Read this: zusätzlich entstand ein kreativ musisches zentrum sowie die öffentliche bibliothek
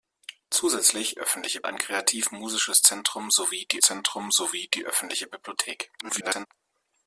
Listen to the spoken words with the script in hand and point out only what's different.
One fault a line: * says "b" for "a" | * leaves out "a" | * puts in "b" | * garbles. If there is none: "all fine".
* says "öffentliche" for "entstand"
* puts in "zentrum sowie die"
* garbles